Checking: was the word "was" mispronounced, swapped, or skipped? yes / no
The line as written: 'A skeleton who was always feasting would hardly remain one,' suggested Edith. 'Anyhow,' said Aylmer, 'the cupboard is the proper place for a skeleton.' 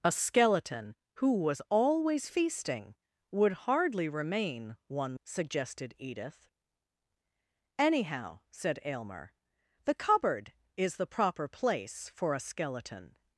no